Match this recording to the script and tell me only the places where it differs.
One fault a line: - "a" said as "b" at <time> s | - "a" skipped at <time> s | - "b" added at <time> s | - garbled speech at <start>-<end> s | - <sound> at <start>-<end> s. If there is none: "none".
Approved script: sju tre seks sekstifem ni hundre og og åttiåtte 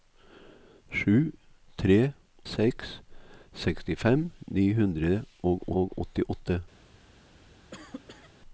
- cough at 7.7-8.3 s